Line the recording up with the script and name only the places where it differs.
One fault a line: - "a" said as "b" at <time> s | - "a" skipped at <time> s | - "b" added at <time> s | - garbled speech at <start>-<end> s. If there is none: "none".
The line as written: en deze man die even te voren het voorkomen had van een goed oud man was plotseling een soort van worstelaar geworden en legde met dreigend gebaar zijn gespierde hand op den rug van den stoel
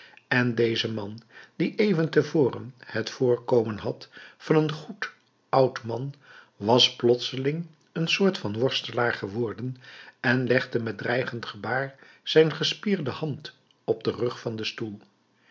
none